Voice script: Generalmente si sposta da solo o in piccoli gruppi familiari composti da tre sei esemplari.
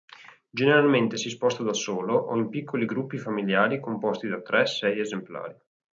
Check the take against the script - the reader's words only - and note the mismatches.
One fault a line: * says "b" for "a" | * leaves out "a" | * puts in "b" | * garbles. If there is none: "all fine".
all fine